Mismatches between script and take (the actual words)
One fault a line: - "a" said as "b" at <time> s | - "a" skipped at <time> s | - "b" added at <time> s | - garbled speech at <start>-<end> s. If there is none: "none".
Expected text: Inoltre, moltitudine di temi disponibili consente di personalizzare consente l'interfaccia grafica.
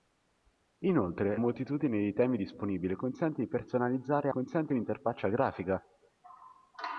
none